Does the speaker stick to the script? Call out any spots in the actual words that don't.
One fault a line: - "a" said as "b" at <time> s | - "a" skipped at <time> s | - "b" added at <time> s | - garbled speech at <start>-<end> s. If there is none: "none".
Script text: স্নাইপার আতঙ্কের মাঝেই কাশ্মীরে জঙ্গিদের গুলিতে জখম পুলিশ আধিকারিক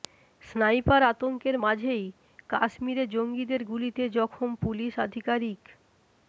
none